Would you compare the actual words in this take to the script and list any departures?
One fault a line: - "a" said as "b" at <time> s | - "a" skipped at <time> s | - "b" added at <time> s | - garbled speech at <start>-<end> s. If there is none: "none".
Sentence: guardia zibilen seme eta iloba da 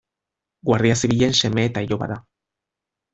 none